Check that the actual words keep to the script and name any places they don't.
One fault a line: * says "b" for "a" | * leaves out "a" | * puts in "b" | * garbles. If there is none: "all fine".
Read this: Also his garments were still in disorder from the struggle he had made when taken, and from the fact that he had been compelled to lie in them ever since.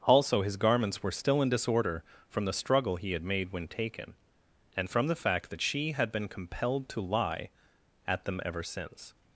* says "she" for "he"
* says "at" for "in"